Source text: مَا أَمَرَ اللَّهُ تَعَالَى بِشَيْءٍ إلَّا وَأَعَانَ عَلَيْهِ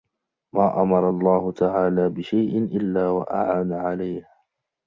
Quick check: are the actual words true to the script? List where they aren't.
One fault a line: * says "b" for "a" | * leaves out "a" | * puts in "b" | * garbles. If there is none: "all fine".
all fine